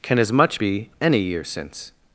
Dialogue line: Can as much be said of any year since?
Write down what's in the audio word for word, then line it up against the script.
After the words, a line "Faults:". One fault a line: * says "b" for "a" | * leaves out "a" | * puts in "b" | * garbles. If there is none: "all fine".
Can as much be any year since?
Faults:
* leaves out "said of"